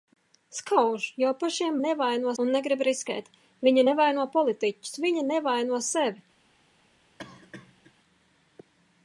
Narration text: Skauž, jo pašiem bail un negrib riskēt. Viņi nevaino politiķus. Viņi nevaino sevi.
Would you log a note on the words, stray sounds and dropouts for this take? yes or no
yes